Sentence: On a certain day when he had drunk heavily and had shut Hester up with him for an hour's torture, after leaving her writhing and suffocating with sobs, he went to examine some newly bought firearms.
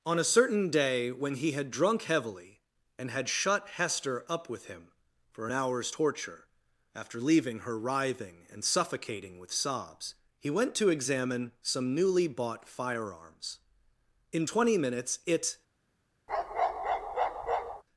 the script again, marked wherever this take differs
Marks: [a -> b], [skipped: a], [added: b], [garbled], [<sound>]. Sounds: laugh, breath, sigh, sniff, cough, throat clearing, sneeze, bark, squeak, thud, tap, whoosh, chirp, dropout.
On a certain day when he had drunk heavily and had shut Hester up with him for an hour's torture, after leaving her writhing and suffocating with sobs, he went to examine some newly bought firearms. [added: In twenty minutes it] [bark]